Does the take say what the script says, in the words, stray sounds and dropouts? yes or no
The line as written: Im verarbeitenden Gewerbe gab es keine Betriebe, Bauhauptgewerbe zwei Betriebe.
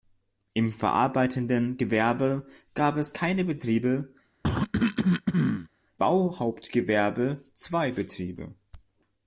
no